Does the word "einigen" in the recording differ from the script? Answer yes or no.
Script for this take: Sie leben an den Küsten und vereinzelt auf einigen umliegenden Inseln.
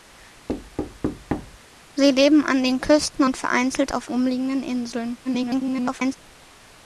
yes